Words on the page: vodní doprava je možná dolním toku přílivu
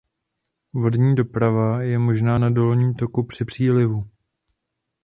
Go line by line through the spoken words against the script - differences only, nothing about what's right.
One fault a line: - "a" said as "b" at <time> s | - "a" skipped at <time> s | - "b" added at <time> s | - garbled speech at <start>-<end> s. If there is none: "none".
- "na" added at 2.4 s
- "při" added at 3.2 s